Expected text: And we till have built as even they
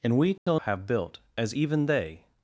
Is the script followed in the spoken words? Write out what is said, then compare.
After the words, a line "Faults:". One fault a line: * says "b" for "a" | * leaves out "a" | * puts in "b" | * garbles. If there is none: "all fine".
And we till have built as even they
Faults:
all fine